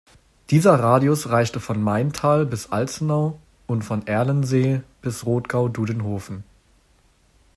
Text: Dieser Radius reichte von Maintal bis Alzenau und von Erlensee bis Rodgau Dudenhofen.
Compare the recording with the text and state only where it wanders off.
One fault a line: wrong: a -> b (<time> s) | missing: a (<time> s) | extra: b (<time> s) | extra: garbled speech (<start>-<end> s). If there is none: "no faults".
no faults